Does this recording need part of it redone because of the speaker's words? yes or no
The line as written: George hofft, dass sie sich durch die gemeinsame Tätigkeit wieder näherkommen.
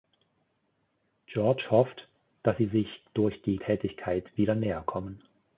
yes